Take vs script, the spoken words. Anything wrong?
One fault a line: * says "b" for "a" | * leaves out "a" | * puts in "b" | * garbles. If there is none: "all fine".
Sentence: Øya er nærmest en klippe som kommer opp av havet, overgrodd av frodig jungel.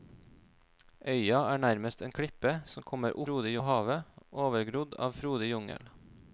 * says "frodig" for "opp"